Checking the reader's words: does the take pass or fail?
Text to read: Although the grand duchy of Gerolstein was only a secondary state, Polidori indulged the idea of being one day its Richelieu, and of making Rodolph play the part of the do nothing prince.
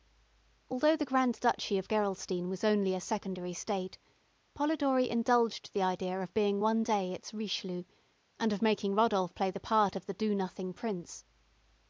pass